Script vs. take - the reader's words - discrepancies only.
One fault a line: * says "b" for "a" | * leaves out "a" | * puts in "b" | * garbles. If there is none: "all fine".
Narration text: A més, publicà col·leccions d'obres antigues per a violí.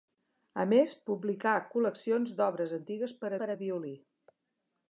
* puts in "per"